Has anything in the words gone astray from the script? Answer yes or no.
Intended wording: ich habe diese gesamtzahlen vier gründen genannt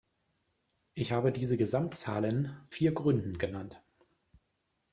no